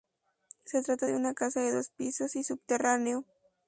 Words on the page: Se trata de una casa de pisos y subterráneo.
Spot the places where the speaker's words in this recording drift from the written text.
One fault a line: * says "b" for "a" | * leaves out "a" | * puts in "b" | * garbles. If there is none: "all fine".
* puts in "dos"